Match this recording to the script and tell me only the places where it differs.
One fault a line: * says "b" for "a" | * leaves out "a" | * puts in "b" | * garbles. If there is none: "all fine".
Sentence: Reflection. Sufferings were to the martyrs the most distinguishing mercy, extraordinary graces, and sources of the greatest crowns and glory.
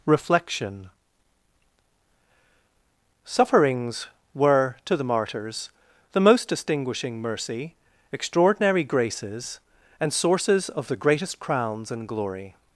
all fine